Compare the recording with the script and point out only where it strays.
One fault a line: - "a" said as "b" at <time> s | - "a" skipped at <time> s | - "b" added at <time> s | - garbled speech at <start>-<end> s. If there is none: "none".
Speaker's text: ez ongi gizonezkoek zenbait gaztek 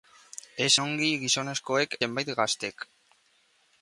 none